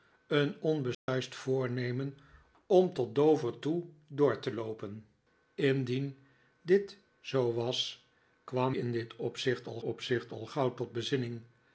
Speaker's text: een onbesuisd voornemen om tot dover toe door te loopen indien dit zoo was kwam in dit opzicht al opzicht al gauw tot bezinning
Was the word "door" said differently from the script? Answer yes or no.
no